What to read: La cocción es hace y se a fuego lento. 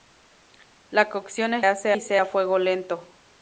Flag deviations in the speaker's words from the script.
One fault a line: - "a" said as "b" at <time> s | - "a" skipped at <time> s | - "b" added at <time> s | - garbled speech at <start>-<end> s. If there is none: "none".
none